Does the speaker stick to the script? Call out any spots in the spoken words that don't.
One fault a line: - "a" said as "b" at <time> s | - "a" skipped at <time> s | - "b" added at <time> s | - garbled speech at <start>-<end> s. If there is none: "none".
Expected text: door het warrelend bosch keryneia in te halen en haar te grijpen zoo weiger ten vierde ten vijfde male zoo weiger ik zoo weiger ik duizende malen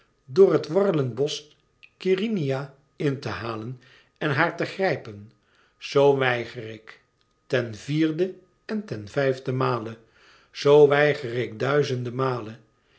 - "ik" added at 6.7 s
- "en" added at 8.7 s
- "zoo weiger ik" skipped at 11.6 s